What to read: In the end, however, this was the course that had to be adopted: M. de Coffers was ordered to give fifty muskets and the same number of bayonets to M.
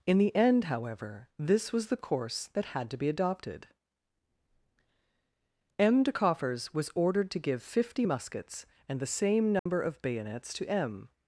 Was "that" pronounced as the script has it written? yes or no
yes